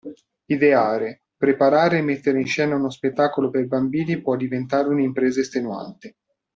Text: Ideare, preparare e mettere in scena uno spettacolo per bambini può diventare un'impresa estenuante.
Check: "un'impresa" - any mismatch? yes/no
no